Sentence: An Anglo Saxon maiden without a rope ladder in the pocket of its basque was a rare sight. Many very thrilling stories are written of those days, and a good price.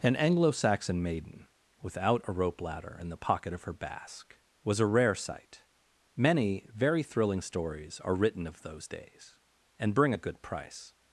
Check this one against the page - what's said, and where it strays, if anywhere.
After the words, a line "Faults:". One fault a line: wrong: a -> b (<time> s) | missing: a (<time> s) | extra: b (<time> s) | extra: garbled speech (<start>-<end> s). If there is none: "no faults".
An Anglo Saxon maiden without a rope ladder in the pocket of her basque was a rare sight. Many very thrilling stories are written of those days, and bring a good price.
Faults:
wrong: its -> her (3.6 s)
extra: bring (9.9 s)